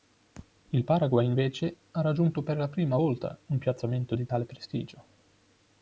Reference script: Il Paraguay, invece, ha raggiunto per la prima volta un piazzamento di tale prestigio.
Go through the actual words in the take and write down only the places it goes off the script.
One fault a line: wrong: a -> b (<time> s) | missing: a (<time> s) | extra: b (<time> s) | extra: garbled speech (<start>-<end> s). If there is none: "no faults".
no faults